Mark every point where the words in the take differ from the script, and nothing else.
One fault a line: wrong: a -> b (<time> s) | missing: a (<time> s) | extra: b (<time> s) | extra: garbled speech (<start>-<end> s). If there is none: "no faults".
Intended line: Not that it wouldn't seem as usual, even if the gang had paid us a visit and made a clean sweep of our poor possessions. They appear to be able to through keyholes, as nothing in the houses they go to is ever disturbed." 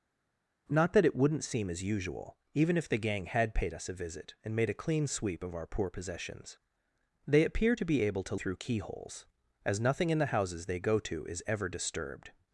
no faults